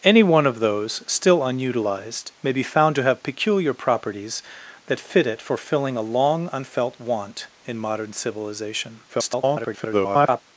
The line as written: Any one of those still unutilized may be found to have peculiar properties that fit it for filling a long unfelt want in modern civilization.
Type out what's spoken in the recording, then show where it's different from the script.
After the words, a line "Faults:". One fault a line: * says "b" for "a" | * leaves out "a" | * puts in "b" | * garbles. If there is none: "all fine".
Any one of those still unutilized may be found to have peculiar properties that fit it for filling a long unfelt want in modern civilization. [garbled]
Faults:
* garbles